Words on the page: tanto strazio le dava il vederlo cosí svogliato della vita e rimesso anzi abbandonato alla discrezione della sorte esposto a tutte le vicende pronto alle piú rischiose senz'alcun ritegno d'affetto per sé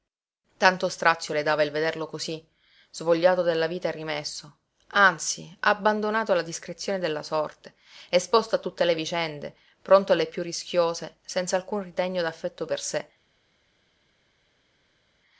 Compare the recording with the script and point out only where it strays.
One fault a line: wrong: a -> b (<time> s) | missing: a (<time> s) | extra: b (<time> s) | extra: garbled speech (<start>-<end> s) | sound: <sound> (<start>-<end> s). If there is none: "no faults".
no faults